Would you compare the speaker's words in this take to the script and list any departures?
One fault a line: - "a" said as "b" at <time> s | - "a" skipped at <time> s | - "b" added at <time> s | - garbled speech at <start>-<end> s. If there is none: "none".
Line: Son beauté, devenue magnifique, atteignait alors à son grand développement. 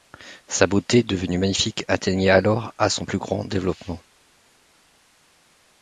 - "Son" said as "Sa" at 0.5 s
- "plus" added at 3.0 s